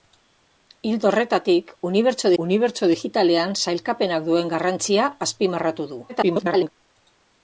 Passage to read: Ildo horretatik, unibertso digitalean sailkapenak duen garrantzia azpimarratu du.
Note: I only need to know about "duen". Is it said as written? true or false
true